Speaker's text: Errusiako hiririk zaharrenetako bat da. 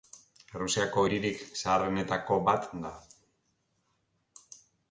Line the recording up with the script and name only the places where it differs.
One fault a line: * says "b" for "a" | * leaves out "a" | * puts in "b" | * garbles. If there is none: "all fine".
all fine